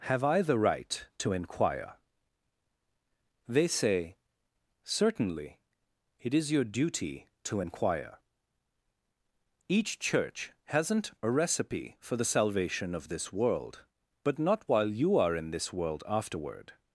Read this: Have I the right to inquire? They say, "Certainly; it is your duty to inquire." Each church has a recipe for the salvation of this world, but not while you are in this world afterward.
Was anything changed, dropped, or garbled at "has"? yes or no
yes